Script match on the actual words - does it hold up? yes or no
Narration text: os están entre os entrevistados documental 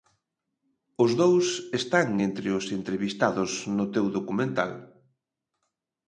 no